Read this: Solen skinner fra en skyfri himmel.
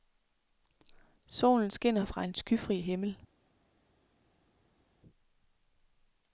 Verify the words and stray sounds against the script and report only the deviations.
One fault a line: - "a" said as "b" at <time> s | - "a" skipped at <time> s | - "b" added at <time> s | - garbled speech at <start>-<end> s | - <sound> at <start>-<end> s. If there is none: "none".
none